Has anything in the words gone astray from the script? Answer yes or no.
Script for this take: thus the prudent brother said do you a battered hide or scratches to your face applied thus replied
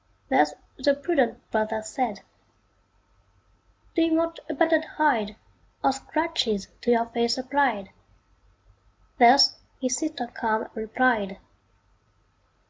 yes